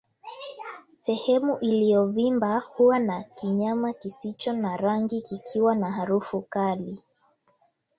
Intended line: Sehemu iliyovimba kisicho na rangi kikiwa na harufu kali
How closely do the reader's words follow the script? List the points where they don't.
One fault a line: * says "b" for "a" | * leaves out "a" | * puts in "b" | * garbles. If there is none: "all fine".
* puts in "huwa na kinyama"